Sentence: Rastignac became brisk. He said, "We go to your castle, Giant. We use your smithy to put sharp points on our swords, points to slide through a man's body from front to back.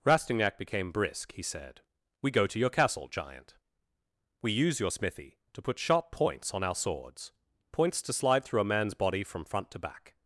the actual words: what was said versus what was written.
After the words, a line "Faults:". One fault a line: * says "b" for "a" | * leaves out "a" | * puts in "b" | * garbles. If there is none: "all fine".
Rastignac became brisk. He said, "We go to your castle, Giant. We use your smithy to put sharp points on our swords, points to slide through a man's body from front to back.
Faults:
all fine